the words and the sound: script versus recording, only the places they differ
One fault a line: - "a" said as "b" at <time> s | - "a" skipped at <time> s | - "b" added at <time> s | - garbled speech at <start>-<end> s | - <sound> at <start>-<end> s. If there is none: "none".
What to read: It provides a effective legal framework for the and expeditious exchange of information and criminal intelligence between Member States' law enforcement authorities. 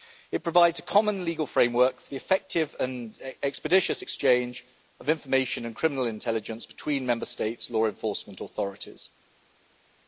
- "effective" said as "common" at 0.8 s
- "effective" added at 2.1 s